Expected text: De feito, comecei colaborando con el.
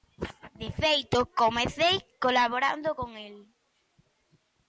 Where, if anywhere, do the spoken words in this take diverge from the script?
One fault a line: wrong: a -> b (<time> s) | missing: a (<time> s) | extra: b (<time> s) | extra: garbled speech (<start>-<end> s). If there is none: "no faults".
no faults